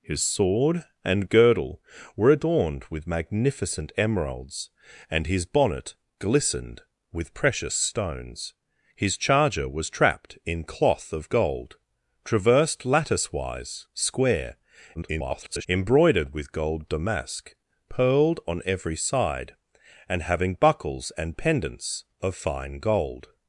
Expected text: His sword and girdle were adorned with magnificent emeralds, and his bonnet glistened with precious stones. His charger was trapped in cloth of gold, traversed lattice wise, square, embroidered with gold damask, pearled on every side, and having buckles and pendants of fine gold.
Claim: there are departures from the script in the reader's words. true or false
true